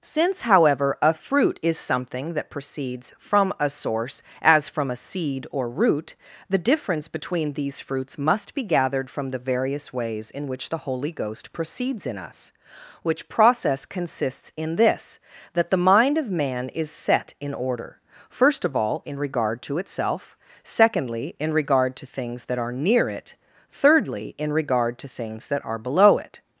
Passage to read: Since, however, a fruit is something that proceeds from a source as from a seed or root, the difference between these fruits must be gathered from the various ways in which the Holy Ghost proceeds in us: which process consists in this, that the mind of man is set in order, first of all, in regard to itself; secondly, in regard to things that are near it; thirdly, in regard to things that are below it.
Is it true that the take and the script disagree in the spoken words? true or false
false